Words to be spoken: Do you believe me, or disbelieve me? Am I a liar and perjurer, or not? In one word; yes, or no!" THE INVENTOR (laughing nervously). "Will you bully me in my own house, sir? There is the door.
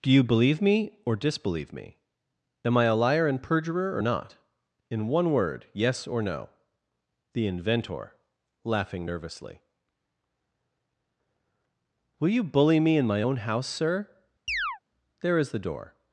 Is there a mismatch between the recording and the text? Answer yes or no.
no